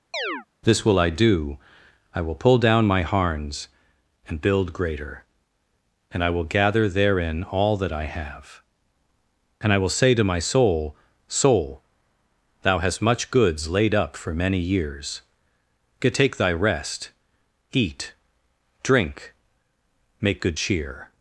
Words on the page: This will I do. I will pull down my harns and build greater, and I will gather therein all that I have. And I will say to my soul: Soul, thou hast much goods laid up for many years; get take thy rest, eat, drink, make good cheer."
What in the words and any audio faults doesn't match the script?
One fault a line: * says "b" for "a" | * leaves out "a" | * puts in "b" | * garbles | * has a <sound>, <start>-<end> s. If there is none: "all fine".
* has a chirp, 0.1-0.5 s